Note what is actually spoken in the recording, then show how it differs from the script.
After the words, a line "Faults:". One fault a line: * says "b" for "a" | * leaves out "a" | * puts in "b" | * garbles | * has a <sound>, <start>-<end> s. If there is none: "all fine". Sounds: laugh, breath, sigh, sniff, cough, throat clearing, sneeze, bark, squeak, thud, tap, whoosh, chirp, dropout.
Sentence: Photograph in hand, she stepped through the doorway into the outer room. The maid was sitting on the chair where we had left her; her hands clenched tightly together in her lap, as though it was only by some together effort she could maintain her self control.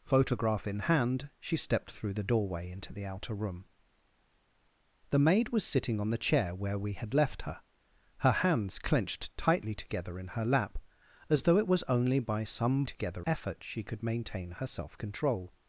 Photograph in hand, she stepped through the doorway into the outer room. The maid was sitting on the chair where we had left her; her hands clenched tightly together in her lap, as though it was only by some together effort she could maintain her self control.
Faults:
all fine